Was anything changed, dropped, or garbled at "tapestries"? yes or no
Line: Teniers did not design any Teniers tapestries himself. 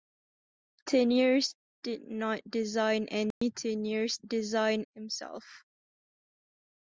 yes